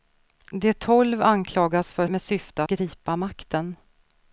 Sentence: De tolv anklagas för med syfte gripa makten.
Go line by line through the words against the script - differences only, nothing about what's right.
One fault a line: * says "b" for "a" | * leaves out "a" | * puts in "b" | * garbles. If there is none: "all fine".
all fine